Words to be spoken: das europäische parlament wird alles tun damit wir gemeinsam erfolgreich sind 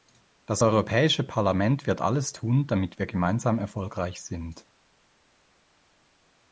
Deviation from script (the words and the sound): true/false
false